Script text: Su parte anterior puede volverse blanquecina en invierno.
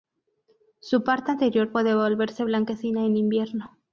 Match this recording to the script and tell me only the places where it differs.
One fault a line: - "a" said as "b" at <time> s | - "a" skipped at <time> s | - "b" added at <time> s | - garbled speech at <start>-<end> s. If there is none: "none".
none